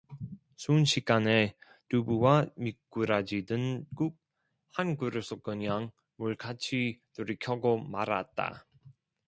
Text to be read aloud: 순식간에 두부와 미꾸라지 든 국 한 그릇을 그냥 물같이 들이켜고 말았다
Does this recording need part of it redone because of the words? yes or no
no